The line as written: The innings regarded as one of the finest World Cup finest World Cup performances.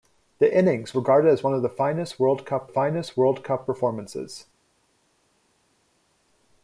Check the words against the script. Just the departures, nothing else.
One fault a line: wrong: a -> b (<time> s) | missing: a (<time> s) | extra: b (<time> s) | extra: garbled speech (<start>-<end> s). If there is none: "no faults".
no faults